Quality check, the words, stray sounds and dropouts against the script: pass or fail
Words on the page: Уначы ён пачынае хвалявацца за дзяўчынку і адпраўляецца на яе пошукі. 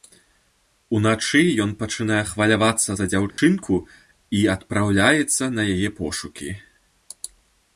fail